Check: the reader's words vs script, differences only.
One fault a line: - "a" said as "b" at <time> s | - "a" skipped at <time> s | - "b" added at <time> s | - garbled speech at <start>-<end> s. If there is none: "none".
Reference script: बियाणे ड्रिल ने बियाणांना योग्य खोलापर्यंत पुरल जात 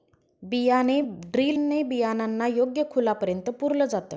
none